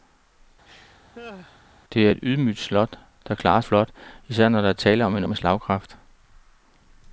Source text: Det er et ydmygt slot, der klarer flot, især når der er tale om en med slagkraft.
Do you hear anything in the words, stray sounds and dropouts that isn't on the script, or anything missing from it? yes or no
yes